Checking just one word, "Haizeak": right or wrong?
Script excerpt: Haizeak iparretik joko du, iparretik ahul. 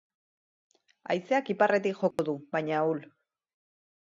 right